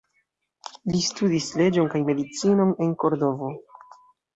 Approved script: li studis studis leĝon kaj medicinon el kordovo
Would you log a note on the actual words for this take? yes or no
yes